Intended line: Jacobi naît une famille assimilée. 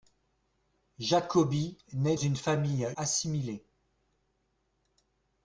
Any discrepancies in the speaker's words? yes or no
no